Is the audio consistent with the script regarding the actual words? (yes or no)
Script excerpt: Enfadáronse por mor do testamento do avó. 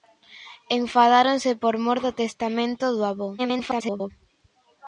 no